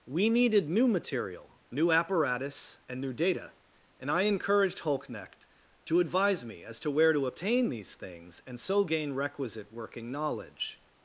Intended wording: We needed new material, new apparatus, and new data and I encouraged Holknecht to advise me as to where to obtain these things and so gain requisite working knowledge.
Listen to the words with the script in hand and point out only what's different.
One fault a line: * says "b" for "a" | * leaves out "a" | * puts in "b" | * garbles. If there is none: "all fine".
all fine